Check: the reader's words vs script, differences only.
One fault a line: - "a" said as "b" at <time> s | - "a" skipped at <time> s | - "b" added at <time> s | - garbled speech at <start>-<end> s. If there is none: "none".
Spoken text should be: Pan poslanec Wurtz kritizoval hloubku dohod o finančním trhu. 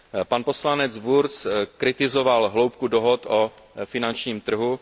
none